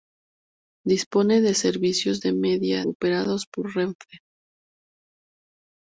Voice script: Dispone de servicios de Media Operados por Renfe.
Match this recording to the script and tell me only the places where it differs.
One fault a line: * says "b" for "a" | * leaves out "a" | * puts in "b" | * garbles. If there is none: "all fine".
all fine